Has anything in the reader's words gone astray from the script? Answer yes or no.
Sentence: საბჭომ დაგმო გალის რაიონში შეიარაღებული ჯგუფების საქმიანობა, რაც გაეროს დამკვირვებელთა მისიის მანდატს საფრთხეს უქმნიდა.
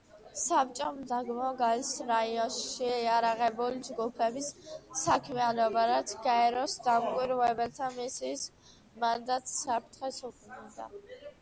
no